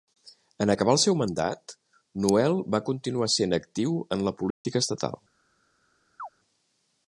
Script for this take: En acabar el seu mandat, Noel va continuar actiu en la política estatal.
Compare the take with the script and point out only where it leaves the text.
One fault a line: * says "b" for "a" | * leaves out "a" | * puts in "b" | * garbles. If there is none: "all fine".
* puts in "sent"